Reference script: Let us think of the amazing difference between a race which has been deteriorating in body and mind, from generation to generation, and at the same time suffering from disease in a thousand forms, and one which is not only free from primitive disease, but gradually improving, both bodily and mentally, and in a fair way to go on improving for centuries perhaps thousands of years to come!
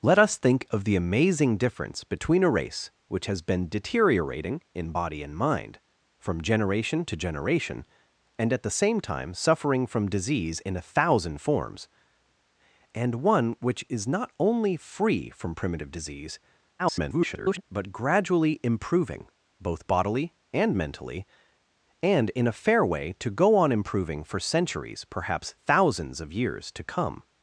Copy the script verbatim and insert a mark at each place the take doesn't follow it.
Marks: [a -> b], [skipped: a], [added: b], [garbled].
Let us think of the amazing difference between a race which has been deteriorating in body and mind, from generation to generation, and at the same time suffering from disease in a thousand forms, and one which is not only free from primitive disease, [garbled] but gradually improving, both bodily and mentally, and in a fair way to go on improving for centuries perhaps thousands of years to come!